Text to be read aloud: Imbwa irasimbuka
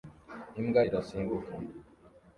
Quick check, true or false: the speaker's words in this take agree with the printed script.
true